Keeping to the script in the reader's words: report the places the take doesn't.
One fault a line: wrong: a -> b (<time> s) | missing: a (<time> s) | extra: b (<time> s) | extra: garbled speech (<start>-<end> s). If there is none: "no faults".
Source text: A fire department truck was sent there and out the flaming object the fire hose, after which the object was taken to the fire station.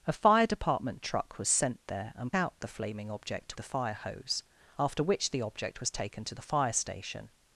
no faults